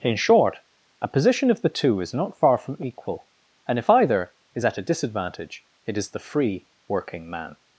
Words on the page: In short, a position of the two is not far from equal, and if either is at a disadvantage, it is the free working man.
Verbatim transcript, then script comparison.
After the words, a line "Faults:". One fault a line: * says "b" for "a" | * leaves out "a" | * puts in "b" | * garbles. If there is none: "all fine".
In short, a position of the two is not far from equal, and if either is at a disadvantage, it is the free working man.
Faults:
all fine